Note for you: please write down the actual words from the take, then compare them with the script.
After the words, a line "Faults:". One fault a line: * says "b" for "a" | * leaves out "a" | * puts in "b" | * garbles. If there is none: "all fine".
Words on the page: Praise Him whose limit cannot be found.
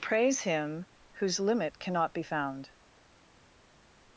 Praise Him whose limit cannot be found.
Faults:
all fine